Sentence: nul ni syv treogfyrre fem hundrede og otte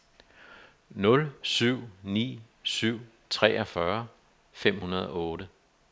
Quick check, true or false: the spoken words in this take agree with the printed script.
false